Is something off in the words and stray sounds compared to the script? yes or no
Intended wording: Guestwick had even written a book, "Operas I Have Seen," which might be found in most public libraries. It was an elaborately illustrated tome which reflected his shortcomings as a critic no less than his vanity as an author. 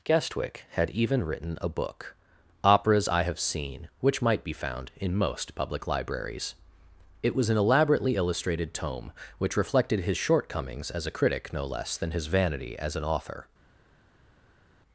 no